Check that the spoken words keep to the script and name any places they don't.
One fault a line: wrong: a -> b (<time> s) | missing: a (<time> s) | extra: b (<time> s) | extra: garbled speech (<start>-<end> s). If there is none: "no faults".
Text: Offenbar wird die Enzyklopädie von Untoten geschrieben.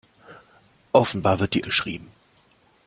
missing: Enzyklopädie von Untoten (1.6 s)